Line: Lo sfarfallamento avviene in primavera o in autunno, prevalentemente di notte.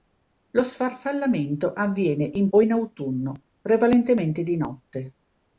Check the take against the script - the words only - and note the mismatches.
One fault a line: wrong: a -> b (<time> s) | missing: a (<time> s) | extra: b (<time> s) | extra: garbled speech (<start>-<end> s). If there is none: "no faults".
missing: primavera (2.5 s)